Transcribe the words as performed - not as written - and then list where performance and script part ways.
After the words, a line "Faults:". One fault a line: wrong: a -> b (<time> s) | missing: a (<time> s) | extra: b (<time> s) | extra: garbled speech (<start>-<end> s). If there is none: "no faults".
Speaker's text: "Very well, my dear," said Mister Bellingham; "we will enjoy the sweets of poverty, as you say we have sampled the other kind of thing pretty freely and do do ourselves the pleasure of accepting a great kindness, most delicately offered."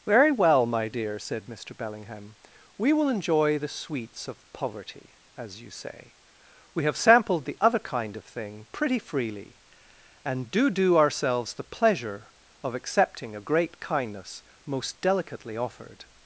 "Very well, my dear," said Mister Bellingham; "we will enjoy the sweets of poverty, as you say we have sampled the other kind of thing pretty freely and do do ourselves the pleasure of accepting a great kindness, most delicately offered."
Faults:
no faults